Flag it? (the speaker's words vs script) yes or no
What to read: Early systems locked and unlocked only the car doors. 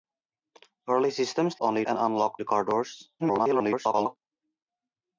yes